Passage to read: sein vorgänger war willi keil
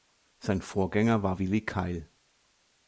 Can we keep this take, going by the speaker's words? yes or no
yes